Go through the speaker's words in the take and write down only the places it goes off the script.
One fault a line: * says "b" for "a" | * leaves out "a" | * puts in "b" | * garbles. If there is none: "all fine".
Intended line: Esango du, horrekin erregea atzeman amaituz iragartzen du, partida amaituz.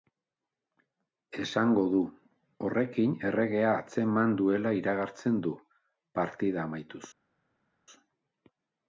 * says "duela" for "amaituz"